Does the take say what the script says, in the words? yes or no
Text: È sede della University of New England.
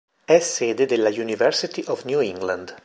yes